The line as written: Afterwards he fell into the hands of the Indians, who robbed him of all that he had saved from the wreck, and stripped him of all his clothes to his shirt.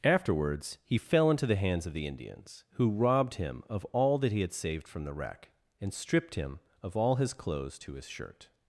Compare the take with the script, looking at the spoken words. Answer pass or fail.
pass